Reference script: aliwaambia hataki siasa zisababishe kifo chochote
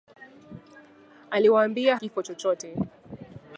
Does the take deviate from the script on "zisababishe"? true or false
true